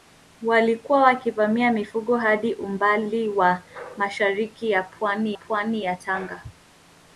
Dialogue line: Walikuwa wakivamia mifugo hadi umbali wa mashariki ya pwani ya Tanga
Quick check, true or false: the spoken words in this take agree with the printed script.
false